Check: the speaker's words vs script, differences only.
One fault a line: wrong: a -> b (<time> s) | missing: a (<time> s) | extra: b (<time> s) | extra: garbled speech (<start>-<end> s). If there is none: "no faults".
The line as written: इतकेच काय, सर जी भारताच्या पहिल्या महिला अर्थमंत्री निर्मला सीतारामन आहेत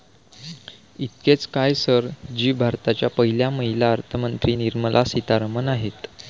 no faults